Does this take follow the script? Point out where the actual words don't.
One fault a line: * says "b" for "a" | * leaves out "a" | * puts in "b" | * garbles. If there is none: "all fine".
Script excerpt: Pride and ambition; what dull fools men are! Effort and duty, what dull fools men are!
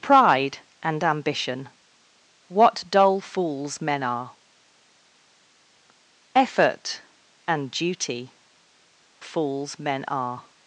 * leaves out "what dull"